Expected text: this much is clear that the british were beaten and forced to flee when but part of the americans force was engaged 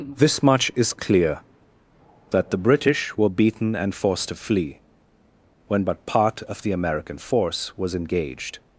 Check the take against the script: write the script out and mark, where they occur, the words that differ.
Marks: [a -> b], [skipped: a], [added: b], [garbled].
this much is clear that the british were beaten and forced to flee when but part of the [americans -> american] force was engaged